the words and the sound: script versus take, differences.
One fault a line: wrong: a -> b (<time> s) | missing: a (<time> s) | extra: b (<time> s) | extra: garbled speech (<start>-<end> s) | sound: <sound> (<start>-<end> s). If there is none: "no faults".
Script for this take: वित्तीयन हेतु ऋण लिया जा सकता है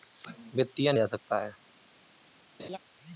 missing: हेतु ऋण लिया (1.0 s)
sound: laugh (2.6-2.8 s)